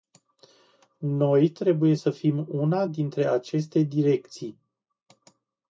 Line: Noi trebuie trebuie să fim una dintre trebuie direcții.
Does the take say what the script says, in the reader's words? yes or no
no